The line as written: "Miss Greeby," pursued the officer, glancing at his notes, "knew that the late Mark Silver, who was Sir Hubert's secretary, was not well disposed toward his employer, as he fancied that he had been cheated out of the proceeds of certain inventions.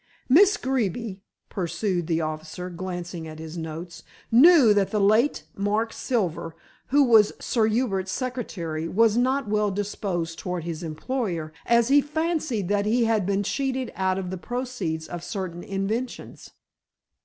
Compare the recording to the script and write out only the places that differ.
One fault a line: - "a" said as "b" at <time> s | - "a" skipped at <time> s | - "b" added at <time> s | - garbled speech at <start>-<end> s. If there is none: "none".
none